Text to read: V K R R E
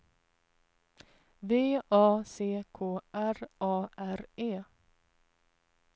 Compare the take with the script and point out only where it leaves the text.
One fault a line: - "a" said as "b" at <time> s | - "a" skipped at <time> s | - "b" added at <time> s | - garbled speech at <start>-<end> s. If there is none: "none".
- "A C" added at 1.9 s
- "A" added at 3.6 s